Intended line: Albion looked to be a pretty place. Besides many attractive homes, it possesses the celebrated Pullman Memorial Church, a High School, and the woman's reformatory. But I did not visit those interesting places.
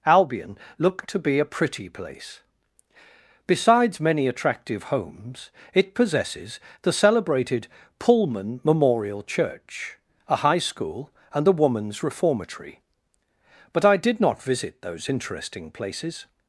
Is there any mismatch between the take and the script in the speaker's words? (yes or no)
no